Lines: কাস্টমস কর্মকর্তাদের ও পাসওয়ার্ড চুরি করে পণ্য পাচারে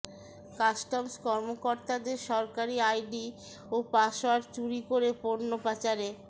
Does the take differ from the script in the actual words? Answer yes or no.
yes